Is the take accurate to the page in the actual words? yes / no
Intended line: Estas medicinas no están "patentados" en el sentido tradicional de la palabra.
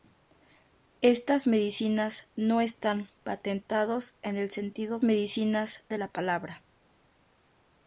no